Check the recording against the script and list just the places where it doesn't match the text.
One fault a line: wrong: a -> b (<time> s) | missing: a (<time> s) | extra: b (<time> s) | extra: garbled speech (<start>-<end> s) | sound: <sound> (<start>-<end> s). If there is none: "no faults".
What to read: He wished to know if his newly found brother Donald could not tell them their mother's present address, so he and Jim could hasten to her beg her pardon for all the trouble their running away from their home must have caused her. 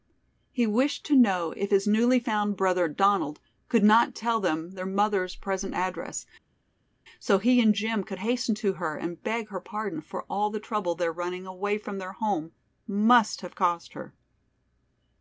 extra: and (9.0 s)